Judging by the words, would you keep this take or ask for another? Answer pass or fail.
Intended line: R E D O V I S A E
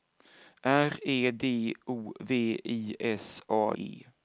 pass